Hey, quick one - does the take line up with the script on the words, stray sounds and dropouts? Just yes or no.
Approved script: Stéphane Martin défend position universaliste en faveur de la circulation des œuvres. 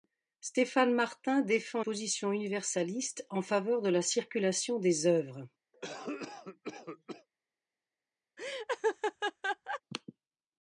no